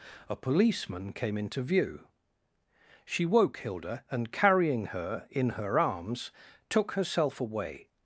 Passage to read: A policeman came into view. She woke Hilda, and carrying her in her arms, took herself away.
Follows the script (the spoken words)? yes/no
yes